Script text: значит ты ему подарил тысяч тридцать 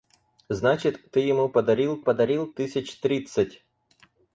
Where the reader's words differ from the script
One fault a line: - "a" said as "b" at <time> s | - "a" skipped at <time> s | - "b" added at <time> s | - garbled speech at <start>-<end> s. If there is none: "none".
- "подарил" added at 2.0 s